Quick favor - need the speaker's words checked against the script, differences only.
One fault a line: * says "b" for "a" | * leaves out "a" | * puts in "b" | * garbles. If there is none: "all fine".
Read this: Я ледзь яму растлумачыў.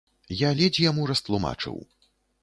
all fine